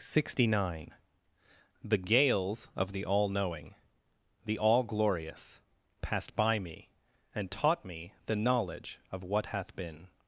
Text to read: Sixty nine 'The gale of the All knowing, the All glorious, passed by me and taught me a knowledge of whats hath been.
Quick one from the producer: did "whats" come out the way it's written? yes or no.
no